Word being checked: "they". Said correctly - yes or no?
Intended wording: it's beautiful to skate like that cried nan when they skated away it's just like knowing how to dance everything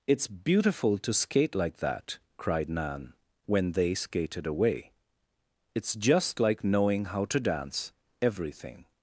yes